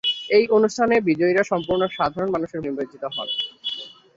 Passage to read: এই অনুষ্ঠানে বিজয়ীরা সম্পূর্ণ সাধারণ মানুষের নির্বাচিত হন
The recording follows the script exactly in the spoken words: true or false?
true